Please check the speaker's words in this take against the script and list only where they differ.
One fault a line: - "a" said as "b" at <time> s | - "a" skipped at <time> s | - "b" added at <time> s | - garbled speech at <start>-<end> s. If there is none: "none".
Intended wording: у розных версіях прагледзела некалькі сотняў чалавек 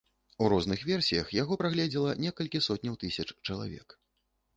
- "яго" added at 1.4 s
- "тысяч" added at 3.0 s